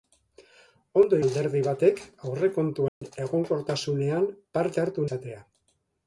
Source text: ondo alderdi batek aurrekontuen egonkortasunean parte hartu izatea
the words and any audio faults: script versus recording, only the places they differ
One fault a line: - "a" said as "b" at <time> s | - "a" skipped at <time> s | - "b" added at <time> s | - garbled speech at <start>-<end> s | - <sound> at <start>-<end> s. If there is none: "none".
- dropout at 2.9-3.0 s